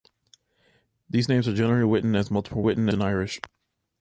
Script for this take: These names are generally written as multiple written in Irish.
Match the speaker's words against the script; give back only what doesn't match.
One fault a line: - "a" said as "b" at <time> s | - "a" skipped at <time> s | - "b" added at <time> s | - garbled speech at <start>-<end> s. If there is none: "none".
none